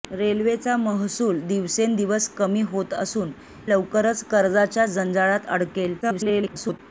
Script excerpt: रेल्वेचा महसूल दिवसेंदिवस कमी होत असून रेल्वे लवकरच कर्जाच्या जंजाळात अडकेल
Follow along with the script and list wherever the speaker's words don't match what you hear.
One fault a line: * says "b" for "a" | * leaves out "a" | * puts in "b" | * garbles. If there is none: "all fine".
* leaves out "रेल्वे"
* garbles